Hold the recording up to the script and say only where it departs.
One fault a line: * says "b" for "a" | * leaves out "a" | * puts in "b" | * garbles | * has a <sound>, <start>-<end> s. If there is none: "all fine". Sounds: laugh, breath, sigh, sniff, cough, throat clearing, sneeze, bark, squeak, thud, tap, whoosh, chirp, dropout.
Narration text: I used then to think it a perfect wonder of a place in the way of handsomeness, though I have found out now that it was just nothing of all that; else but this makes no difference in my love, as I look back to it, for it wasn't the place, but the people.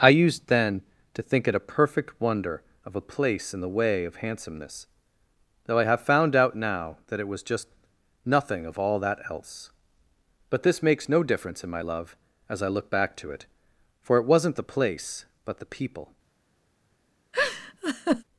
* has a laugh, 17.3-18.2 s